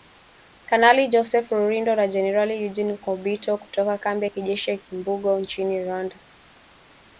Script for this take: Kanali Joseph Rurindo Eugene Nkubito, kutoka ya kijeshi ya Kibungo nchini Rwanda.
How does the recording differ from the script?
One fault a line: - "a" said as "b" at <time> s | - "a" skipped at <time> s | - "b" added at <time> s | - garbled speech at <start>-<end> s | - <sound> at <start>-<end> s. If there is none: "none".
- "na Jenerali" added at 1.9 s
- "kambi" added at 4.0 s